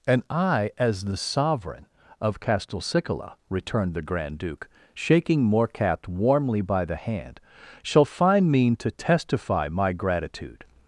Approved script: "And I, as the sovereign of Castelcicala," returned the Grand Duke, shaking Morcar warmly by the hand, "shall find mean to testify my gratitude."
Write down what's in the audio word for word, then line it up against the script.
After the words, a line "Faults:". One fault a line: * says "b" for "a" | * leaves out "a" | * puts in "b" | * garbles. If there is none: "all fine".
"And I, as the sovereign of Castelcicala," returned the Grand Duke, shaking Morcar warmly by the hand, "shall find mean to testify my gratitude."
Faults:
all fine